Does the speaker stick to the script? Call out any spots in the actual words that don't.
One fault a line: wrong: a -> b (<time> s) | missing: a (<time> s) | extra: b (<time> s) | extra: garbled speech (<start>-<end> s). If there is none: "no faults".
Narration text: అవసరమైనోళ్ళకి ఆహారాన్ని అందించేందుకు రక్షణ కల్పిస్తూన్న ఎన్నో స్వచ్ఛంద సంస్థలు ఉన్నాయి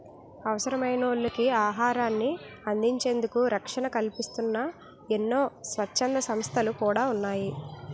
extra: కూడా (6.8 s)